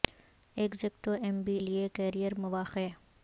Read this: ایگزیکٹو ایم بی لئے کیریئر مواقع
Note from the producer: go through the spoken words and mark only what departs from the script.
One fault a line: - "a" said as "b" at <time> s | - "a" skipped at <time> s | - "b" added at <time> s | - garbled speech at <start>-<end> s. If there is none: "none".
none